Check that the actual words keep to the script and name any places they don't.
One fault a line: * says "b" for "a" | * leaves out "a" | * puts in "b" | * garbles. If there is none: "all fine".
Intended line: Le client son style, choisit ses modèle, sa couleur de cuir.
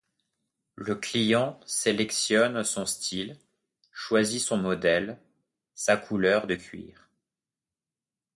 * puts in "sélectionne"
* says "son" for "ses"